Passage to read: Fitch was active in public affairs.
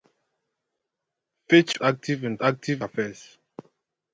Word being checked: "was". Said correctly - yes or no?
no